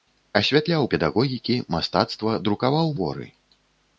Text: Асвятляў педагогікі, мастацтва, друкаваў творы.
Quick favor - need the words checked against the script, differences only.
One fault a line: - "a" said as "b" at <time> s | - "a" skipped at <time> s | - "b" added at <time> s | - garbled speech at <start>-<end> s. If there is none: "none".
none